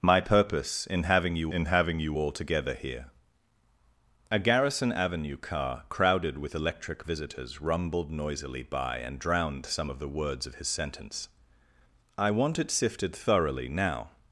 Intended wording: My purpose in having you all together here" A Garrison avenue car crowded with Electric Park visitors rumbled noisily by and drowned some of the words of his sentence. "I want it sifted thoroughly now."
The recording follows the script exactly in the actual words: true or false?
false